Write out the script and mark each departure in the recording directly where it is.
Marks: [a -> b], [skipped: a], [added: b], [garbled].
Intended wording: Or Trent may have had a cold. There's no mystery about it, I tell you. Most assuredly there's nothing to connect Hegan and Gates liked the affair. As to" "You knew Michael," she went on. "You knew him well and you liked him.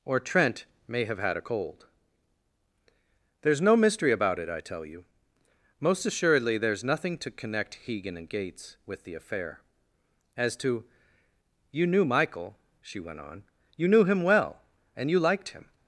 Or Trent may have had a cold. There's no mystery about it, I tell you. Most assuredly there's nothing to connect Hegan and Gates [liked -> with] the affair. As to" "You knew Michael," she went on. "You knew him well and you liked him.